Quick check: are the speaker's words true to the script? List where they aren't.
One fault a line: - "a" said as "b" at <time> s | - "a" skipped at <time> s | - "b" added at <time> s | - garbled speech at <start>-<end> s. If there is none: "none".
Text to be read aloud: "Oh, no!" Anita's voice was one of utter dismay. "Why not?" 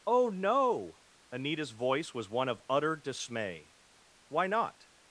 none